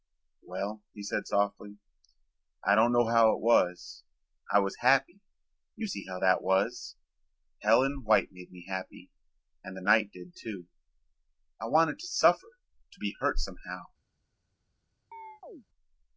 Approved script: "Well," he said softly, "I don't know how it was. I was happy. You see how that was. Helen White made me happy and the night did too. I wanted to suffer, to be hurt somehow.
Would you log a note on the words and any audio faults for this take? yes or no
yes